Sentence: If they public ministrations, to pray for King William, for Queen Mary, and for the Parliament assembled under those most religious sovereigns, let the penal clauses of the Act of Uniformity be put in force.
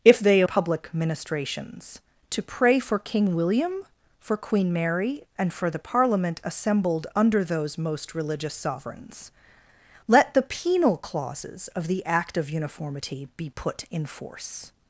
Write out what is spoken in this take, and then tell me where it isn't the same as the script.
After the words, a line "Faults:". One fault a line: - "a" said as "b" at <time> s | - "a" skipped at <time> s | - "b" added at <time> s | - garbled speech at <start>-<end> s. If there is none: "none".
If they public ministrations, to pray for King William, for Queen Mary, and for the Parliament assembled under those most religious sovereigns, let the penal clauses of the Act of Uniformity be put in force.
Faults:
none